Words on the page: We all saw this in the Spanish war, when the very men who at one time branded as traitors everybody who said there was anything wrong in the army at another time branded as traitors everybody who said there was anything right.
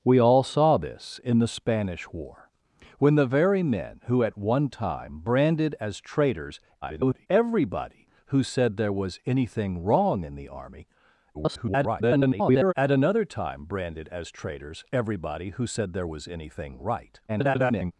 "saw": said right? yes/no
yes